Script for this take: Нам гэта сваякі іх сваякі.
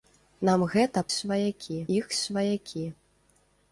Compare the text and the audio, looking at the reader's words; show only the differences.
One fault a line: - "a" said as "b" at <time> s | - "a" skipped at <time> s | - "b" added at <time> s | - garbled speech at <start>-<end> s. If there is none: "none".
none